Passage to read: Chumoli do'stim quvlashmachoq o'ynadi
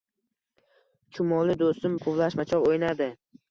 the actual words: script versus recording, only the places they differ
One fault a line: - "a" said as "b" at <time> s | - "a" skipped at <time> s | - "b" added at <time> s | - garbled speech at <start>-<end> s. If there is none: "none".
none